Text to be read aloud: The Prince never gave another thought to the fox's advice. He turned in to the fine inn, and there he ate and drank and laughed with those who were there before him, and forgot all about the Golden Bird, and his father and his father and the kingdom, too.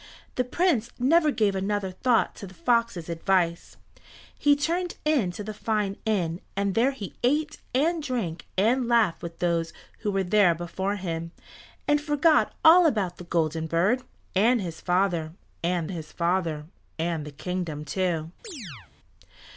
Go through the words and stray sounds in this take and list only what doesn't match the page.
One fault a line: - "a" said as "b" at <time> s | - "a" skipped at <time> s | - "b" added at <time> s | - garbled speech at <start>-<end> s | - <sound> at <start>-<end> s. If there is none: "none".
- chirp at 18.4-18.9 s